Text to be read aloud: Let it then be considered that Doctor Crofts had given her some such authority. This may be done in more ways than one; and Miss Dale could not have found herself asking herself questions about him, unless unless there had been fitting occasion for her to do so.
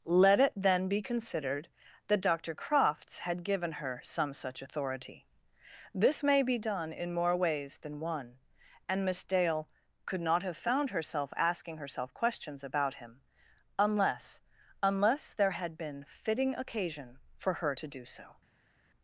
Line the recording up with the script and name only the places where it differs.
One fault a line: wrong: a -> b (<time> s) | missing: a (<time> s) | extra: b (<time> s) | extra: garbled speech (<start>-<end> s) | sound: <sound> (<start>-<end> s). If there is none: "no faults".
no faults